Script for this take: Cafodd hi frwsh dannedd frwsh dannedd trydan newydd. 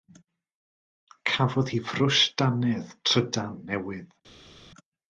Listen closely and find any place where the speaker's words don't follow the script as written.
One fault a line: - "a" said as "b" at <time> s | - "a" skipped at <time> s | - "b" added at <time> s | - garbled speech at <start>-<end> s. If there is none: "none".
- "frwsh dannedd" skipped at 3.0 s